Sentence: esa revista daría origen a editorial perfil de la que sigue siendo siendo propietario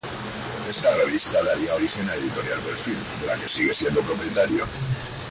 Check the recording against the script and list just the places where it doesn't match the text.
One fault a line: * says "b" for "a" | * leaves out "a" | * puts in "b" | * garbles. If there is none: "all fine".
* says "esta" for "esa"
* leaves out "siendo"